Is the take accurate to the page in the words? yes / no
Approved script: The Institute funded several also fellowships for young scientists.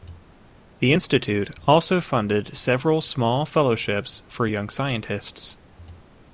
no